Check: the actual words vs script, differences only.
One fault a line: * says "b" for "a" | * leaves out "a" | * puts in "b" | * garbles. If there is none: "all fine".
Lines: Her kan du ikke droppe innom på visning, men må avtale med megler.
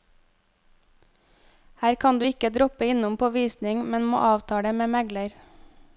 all fine